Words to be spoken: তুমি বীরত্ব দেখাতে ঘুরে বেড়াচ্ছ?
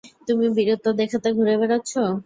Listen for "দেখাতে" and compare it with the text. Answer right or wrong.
right